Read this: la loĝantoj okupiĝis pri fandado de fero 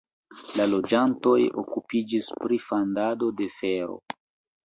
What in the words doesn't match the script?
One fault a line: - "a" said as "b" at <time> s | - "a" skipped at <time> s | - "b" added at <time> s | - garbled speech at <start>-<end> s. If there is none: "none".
none